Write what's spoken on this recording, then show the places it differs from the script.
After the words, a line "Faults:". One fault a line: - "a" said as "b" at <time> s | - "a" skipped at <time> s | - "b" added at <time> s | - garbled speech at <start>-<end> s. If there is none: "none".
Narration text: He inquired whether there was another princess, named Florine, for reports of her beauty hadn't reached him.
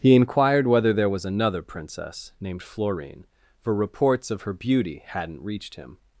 He inquired whether there was another princess, named Florine, for reports of her beauty hadn't reached him.
Faults:
none